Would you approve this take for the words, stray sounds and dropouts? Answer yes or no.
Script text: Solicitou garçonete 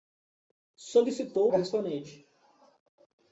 yes